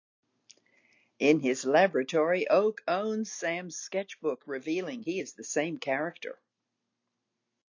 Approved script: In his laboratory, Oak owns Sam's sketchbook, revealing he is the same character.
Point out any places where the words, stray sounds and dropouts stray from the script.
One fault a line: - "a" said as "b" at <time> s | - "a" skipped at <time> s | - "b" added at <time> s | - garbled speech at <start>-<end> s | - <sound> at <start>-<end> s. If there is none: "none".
none